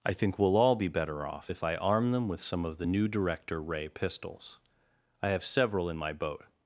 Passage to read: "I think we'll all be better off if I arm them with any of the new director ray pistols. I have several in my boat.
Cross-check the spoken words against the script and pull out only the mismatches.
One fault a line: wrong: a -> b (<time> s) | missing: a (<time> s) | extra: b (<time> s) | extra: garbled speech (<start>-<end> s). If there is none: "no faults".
wrong: any -> some (2.4 s)